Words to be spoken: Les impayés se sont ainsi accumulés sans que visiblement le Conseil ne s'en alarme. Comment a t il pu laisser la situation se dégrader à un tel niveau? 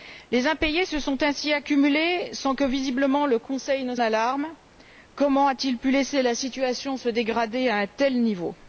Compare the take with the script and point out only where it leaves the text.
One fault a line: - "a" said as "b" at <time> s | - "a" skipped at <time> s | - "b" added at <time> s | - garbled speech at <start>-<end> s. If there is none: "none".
- "s'en" skipped at 4.0 s